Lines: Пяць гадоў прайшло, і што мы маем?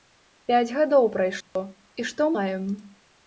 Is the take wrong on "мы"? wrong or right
wrong